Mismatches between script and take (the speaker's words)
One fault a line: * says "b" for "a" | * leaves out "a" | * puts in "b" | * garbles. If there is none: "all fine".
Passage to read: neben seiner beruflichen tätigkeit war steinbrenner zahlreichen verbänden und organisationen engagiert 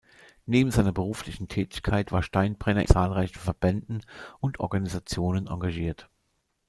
all fine